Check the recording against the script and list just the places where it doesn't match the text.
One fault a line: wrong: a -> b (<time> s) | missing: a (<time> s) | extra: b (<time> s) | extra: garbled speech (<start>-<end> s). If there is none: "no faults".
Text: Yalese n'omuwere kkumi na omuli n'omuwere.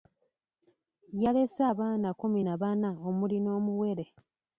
wrong: n'omuwere -> abaana (1.7 s)
extra: bana (2.6 s)